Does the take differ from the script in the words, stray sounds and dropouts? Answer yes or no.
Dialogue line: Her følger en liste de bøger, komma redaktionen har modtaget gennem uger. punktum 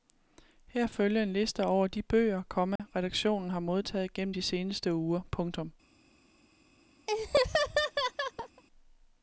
yes